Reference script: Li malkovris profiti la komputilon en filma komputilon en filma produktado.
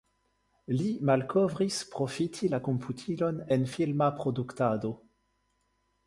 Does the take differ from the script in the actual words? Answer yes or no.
yes